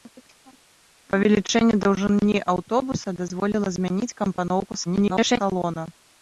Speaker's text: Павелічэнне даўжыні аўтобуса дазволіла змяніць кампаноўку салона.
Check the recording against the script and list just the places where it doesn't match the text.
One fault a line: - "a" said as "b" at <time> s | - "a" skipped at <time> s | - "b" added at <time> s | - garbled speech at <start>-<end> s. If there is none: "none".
- garbled speech at 4.8-5.4 s